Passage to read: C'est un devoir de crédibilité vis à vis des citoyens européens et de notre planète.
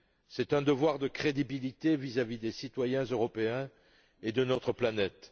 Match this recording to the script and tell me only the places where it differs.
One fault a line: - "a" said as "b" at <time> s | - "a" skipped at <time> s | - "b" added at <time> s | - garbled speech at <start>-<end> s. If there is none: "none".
none